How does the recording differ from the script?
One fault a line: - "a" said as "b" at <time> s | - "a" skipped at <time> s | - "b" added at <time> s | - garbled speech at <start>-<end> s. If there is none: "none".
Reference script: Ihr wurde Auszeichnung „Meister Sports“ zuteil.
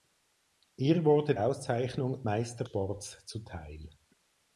none